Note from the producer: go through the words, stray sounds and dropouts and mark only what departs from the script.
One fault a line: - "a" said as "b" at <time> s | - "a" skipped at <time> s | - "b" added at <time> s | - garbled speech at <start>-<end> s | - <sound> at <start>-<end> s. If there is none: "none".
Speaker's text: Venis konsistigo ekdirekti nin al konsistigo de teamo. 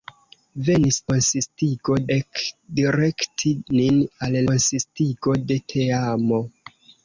none